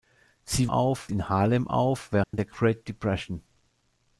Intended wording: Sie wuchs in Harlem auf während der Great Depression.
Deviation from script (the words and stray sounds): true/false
true